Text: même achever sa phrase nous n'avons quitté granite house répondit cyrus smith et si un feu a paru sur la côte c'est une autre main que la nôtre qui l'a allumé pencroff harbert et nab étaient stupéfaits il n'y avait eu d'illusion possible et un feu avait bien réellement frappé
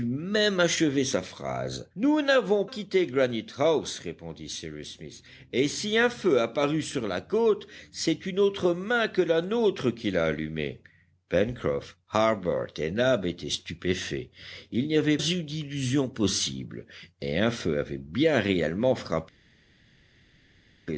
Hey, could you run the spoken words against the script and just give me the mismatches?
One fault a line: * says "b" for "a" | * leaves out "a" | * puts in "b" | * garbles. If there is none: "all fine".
all fine